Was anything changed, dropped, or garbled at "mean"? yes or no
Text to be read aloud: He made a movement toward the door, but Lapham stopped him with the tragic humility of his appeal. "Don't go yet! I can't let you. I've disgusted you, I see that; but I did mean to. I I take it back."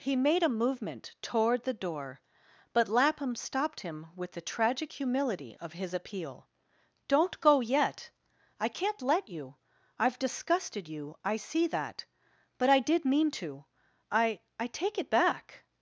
no